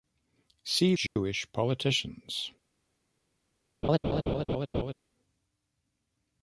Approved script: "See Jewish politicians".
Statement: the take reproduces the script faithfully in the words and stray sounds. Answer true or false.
false